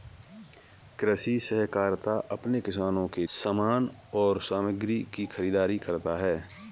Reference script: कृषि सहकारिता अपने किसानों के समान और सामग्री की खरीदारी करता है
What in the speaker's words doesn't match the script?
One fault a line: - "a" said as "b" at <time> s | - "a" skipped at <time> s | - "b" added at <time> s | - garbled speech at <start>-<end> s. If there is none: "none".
none